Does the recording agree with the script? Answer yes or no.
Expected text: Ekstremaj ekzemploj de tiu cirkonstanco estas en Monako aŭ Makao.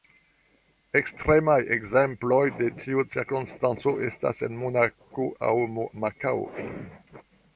yes